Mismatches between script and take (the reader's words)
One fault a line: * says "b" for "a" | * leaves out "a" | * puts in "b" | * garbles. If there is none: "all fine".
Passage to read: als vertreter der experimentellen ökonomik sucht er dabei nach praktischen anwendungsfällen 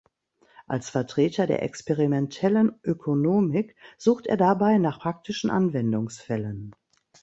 all fine